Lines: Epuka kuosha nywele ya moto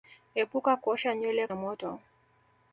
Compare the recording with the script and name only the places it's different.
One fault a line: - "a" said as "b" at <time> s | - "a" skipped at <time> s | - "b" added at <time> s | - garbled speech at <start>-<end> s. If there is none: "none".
none